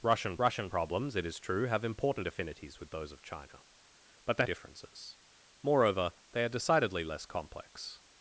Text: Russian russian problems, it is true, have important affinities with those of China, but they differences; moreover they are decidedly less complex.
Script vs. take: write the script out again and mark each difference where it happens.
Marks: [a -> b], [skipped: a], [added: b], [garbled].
Russian russian problems, it is true, have important affinities with those of China, but they differences; moreover they are decidedly less complex.